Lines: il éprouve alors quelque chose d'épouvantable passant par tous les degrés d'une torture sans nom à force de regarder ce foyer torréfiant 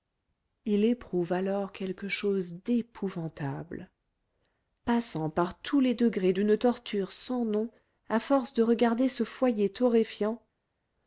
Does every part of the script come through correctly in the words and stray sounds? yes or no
yes